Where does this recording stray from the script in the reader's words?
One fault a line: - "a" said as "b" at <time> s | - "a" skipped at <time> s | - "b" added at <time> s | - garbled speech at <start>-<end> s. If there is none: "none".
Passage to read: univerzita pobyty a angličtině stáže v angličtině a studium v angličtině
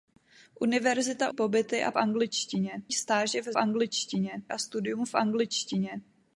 none